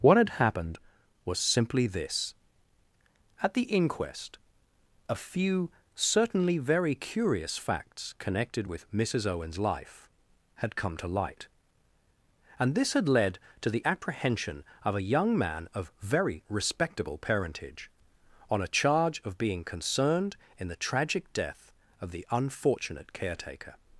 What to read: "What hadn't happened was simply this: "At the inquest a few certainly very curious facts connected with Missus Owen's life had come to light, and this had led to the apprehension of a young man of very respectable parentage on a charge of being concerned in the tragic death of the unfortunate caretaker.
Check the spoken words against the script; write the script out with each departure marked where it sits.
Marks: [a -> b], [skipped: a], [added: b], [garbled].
"What [hadn't -> had] happened was simply this: "At the inquest a few certainly very curious facts connected with Missus Owen's life had come to light, and this had led to the apprehension of a young man of very respectable parentage on a charge of being concerned in the tragic death of the unfortunate caretaker.